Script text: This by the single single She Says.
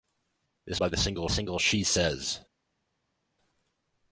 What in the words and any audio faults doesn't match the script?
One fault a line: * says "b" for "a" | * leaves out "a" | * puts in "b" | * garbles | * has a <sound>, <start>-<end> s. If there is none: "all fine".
all fine